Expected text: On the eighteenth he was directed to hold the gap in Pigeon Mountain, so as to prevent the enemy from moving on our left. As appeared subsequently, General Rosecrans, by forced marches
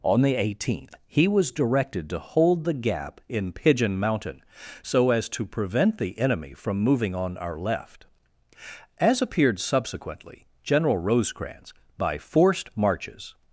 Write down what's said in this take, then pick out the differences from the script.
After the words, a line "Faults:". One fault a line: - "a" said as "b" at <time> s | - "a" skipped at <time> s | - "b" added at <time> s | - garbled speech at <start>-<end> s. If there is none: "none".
On the eighteenth he was directed to hold the gap in Pigeon Mountain, so as to prevent the enemy from moving on our left. As appeared subsequently, General Rosecrans, by forced marches
Faults:
none